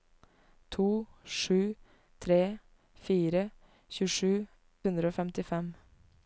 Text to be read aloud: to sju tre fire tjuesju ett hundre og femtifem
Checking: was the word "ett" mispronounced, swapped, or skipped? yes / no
yes